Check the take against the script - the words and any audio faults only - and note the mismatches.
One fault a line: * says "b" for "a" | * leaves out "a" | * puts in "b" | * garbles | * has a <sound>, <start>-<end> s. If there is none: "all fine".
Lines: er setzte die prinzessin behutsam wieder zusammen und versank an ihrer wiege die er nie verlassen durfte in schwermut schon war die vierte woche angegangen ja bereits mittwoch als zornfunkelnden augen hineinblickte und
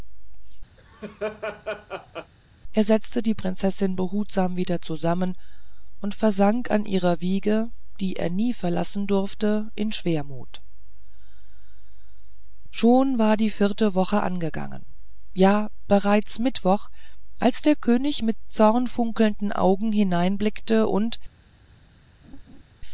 * has a laugh, 0.8-2.3 s
* puts in "der könig mit"
* has a laugh, 22.2-22.6 s